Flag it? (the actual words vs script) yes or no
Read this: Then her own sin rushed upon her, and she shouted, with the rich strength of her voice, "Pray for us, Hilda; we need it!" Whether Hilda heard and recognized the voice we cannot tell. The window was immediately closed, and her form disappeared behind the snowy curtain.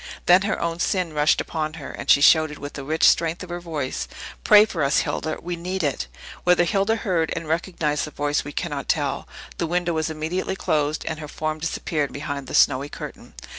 no